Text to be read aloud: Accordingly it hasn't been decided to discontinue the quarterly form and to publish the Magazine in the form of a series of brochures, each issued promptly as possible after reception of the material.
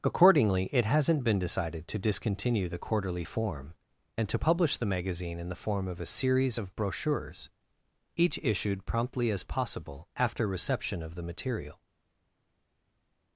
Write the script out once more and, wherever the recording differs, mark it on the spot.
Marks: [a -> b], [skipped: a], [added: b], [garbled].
Accordingly it hasn't been decided to discontinue the quarterly form and to publish the Magazine in the form of a series of brochures, each issued promptly as possible after reception of the material.